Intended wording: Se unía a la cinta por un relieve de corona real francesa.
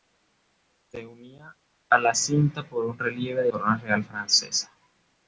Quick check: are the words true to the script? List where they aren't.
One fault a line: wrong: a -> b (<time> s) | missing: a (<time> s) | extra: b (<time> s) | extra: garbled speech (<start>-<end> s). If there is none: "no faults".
no faults